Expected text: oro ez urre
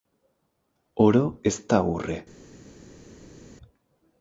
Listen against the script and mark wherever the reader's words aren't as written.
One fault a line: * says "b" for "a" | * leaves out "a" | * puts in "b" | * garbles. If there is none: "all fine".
* puts in "da"